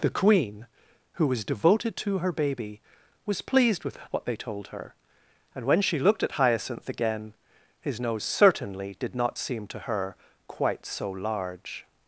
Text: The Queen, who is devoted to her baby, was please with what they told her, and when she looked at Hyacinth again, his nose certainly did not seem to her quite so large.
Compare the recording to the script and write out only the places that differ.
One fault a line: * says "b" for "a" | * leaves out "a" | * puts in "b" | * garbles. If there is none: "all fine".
* says "was" for "is"
* says "pleased" for "please"